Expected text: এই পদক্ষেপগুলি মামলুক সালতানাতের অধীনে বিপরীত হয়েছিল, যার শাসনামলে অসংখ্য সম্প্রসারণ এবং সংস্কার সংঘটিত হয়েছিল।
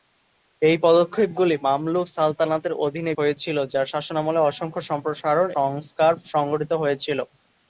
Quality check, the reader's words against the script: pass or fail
fail